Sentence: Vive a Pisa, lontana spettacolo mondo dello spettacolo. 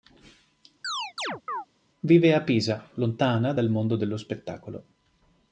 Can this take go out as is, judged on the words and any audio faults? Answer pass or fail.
fail